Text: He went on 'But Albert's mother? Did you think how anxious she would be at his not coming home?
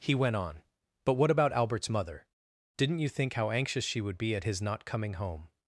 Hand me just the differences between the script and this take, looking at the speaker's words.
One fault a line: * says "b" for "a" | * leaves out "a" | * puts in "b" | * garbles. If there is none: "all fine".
* puts in "what about"
* says "Didn't" for "Did"